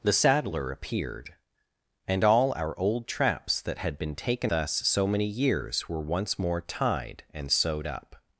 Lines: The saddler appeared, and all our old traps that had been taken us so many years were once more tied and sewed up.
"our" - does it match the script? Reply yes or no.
yes